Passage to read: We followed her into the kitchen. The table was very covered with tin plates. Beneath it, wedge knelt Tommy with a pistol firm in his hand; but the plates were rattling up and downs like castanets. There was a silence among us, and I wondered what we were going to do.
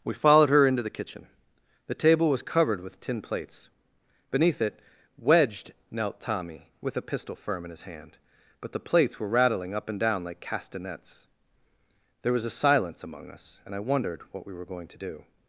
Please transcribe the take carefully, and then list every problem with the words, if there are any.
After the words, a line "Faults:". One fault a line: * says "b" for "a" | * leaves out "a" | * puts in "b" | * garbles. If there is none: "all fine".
We followed her into the kitchen. The table was covered with tin plates. Beneath it, wedged knelt Tommy with a pistol firm in his hand; but the plates were rattling up and down like castanets. There was a silence among us, and I wondered what we were going to do.
Faults:
* leaves out "very"
* says "wedged" for "wedge"
* says "down" for "downs"